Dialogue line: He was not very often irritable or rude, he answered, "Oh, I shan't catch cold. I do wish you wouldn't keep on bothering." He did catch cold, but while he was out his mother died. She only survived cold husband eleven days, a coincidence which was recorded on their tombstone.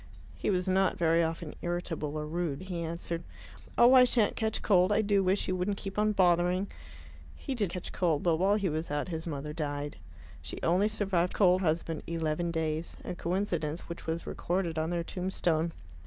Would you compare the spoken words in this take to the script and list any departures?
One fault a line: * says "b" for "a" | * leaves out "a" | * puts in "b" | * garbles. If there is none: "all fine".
all fine